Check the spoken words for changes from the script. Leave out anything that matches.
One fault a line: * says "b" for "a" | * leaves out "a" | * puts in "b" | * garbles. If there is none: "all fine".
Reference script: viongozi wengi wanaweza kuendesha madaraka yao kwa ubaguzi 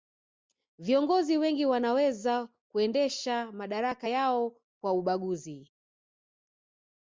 all fine